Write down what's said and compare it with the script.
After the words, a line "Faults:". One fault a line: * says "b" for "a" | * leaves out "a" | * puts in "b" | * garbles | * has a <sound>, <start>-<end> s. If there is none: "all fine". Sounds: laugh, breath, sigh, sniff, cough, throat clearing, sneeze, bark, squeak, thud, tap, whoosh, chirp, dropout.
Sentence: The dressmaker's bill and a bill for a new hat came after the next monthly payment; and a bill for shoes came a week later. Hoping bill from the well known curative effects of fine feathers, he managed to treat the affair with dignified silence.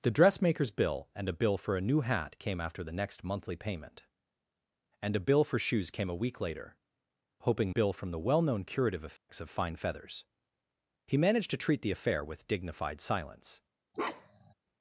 The dressmaker's bill and a bill for a new hat came after the next monthly payment; and a bill for shoes came a week later. Hoping bill from the well known curative effects of fine feathers, he managed to treat the affair with dignified silence.
Faults:
* has a dropout, 9.2-9.3 s
* has a bark, 13.9-14.5 s